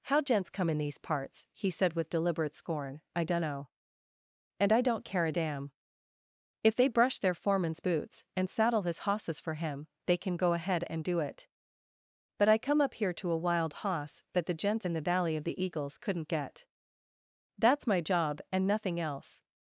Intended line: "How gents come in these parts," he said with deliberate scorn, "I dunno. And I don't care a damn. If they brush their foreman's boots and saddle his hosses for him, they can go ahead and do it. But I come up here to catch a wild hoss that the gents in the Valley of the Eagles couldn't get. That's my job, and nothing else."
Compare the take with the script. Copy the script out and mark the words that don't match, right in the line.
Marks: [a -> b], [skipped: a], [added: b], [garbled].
"How gents come in these parts," he said with deliberate scorn, "I dunno. And I don't care a damn. If they brush their foreman's boots and saddle his hosses for him, they can go ahead and do it. But I come up here to [skipped: catch] a wild hoss that the gents in the Valley of the Eagles couldn't get. That's my job, and nothing else."